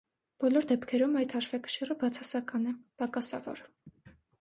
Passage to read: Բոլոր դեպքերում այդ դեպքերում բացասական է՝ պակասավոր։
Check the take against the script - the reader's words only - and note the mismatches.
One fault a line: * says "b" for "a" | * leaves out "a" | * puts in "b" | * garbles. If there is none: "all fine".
* says "հաշվեկշիռը" for "դեպքերում"